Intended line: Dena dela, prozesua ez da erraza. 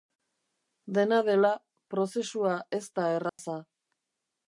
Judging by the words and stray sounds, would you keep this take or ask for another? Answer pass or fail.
fail